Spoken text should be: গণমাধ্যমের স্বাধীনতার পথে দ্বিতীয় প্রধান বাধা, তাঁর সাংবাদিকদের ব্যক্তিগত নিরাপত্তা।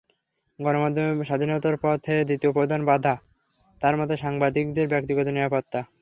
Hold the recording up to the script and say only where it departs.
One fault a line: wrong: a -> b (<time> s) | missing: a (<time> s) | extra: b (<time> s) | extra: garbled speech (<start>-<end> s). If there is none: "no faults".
extra: মতে (4.0 s)